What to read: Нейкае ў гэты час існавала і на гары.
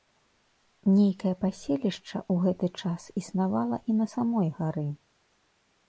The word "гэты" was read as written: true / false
true